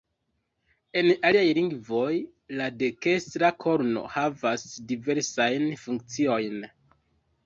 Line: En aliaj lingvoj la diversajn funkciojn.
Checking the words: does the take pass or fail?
fail